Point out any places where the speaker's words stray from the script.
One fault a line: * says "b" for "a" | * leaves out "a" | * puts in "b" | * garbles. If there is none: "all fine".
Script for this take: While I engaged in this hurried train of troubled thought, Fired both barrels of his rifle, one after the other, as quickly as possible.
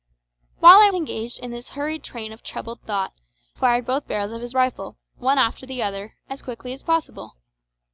all fine